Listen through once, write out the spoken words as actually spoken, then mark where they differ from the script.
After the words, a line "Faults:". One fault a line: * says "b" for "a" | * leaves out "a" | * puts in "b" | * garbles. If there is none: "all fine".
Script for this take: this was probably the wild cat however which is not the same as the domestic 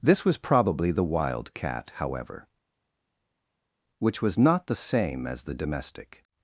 this was probably the wild cat however which was not the same as the domestic
Faults:
* says "was" for "is"